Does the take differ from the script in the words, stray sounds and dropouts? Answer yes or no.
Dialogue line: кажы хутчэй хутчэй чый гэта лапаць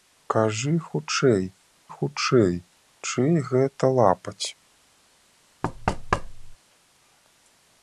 yes